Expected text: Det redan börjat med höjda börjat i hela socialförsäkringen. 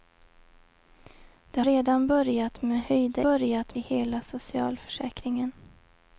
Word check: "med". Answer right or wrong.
right